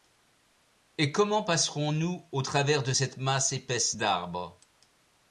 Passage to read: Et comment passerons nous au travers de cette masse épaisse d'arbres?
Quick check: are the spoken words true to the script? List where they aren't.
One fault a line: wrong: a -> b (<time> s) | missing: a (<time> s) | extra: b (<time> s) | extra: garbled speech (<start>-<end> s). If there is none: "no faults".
no faults